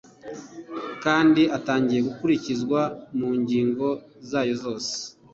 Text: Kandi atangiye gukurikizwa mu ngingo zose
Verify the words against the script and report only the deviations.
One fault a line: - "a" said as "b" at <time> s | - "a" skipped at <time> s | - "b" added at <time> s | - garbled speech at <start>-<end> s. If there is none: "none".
- "zayo" added at 4.3 s